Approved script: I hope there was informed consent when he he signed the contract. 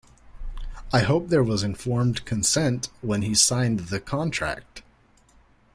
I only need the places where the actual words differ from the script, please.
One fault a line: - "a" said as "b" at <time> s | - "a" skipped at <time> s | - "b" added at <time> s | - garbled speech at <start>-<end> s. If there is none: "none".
- "he" skipped at 3.4 s